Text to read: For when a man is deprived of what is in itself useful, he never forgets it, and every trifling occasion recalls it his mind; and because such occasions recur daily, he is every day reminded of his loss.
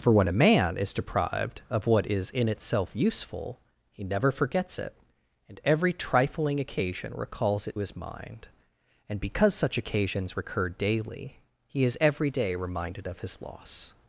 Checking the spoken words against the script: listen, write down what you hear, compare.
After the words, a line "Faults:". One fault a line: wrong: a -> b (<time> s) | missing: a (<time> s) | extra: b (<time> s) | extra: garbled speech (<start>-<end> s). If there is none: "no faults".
For when a man is deprived of what is in itself useful, he never forgets it, and every trifling occasion recalls it his mind; and because such occasions recur daily, he is every day reminded of his loss.
Faults:
no faults